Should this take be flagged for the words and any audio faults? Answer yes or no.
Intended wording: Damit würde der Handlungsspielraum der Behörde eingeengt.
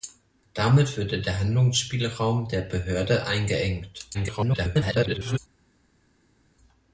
yes